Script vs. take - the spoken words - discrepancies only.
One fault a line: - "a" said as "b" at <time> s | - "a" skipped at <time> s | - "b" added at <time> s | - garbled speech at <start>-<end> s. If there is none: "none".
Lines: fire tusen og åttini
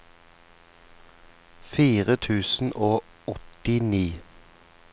none